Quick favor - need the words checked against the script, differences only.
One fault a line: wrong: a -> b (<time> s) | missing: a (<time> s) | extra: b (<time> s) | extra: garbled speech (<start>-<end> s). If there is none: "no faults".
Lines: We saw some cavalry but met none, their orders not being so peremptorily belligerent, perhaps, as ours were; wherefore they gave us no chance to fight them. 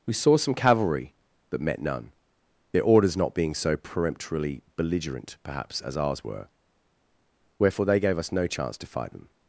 no faults